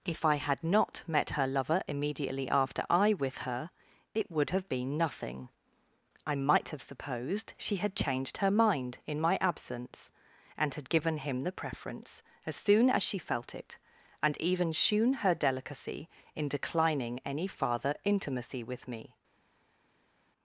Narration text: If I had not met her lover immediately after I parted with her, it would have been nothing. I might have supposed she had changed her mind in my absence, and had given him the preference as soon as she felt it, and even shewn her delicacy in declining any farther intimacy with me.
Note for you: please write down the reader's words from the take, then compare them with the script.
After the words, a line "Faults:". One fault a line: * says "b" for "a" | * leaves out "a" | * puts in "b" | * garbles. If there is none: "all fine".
If I had not met her lover immediately after I with her, it would have been nothing. I might have supposed she had changed her mind in my absence, and had given him the preference as soon as she felt it, and even shewn her delicacy in declining any farther intimacy with me.
Faults:
* leaves out "parted"